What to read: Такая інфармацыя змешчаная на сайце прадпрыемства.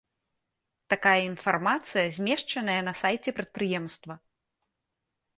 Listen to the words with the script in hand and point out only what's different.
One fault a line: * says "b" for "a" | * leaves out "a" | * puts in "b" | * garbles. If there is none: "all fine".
all fine